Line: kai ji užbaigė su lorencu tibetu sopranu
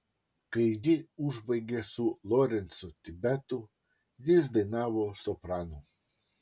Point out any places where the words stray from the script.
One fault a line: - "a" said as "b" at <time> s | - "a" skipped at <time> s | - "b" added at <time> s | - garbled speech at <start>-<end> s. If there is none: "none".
- "jis dainavo" added at 4.3 s